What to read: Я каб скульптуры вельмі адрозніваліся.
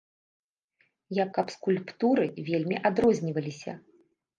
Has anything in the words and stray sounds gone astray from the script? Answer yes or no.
no